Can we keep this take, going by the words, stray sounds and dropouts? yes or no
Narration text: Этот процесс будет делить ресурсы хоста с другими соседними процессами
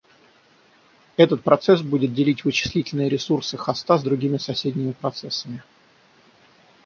no